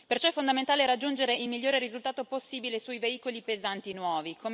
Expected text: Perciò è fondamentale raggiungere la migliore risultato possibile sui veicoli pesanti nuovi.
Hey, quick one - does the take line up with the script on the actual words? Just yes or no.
no